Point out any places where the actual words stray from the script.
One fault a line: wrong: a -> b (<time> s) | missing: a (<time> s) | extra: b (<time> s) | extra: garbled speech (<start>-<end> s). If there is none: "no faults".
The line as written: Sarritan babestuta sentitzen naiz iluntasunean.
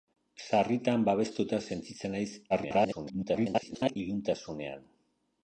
extra: garbled speech (2.5-4.0 s)